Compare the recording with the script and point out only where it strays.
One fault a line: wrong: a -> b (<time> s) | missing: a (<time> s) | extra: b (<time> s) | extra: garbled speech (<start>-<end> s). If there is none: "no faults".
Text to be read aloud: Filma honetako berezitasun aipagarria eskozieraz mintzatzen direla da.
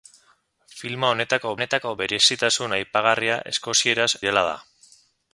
extra: honetako (1.6 s)
missing: mintzatzen (4.1 s)